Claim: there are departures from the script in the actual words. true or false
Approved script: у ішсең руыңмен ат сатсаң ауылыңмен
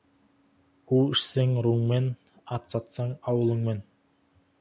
false